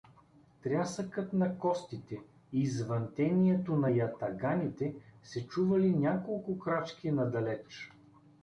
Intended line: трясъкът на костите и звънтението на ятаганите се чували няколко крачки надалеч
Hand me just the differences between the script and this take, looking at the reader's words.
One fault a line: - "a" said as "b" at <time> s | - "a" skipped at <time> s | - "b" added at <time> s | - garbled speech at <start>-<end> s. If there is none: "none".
none